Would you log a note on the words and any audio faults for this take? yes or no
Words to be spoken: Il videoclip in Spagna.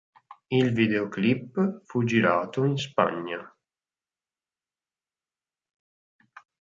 yes